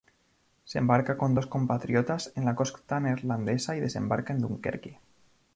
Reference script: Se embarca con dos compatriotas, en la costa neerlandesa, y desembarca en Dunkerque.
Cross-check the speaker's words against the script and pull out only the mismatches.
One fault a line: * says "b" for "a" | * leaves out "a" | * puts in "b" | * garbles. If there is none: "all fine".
all fine